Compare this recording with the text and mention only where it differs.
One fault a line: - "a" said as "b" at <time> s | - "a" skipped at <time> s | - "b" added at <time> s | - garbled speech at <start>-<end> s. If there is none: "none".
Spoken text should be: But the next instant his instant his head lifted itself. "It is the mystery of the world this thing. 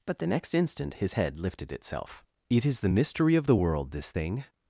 - "instant his" skipped at 1.1 s